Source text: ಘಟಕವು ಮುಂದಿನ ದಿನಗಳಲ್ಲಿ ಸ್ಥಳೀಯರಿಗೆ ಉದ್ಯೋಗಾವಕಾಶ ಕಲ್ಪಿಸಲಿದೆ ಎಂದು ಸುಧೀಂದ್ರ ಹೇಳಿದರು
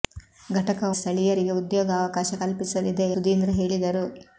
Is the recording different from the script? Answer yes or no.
yes